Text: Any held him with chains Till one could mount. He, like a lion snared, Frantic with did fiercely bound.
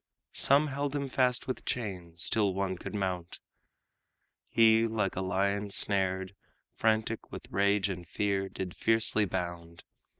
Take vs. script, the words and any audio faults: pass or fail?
fail